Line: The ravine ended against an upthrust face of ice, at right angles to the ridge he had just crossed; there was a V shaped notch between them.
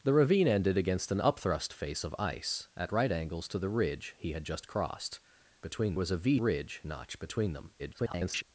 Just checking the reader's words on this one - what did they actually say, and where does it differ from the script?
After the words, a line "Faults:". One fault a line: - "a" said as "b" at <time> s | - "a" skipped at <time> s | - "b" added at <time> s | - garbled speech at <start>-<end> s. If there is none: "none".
The ravine ended against an upthrust face of ice, at right angles to the ridge he had just crossed; between was a V ridge notch between them. [garbled]
Faults:
- "there" said as "between" at 5.6 s
- "shaped" said as "ridge" at 6.4 s
- garbled speech at 7.8-8.4 s